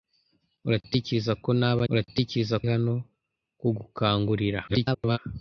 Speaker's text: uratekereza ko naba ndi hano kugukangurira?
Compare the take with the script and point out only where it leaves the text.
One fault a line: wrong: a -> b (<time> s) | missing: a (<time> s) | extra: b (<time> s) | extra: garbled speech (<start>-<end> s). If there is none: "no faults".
wrong: ndi -> uratekereza (1.9 s)
extra: garbled speech (4.7-5.2 s)